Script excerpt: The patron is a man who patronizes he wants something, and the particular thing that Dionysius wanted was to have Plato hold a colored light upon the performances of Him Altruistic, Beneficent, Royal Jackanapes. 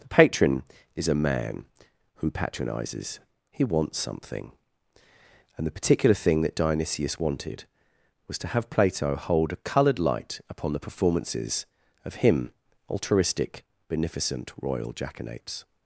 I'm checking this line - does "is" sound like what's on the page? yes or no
yes